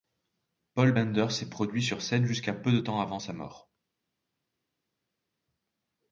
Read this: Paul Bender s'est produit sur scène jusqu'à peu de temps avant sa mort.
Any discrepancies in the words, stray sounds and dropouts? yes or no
no